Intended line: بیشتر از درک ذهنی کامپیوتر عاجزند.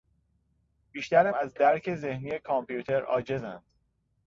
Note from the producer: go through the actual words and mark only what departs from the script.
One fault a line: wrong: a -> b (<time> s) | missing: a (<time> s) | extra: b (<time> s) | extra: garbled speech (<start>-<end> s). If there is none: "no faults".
no faults